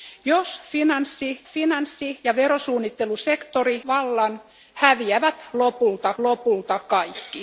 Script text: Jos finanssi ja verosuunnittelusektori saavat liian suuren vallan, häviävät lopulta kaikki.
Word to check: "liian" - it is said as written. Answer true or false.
false